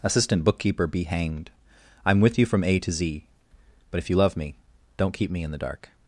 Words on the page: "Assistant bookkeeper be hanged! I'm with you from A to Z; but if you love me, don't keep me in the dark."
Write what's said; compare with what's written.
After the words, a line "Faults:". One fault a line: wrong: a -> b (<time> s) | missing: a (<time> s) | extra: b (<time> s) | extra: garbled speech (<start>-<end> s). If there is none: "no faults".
"Assistant bookkeeper be hanged! I'm with you from A to Z; but if you love me, don't keep me in the dark."
Faults:
no faults